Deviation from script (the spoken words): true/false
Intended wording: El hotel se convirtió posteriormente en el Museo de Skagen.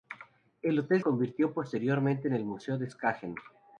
true